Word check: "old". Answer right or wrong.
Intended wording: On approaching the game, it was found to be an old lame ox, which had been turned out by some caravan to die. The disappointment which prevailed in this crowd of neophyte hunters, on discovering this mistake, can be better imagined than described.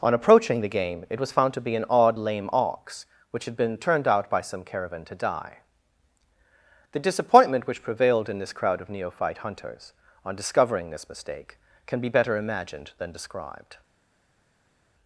wrong